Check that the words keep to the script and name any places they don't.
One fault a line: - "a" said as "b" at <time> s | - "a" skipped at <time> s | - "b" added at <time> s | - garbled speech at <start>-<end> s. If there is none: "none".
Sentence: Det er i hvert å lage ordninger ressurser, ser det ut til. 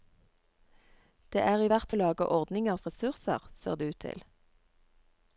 none